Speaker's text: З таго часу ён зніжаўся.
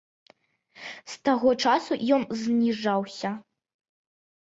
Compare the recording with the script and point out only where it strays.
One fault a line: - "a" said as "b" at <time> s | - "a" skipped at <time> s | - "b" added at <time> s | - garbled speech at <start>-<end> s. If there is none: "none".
none